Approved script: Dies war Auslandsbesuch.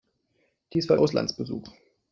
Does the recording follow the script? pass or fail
pass